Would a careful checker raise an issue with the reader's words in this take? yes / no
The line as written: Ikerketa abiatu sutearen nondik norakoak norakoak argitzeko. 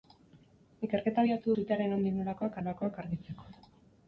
no